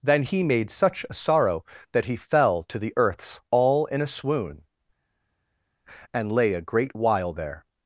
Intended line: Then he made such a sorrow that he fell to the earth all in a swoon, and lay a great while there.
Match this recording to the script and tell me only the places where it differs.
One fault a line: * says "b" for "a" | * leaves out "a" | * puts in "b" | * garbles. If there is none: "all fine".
* says "earths" for "earth"